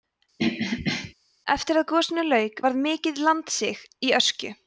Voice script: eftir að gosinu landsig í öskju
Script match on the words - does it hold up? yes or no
no